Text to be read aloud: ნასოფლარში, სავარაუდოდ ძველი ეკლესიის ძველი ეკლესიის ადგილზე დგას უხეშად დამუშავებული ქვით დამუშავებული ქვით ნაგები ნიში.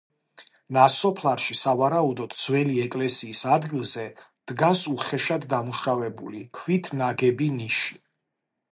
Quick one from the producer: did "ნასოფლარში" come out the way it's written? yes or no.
yes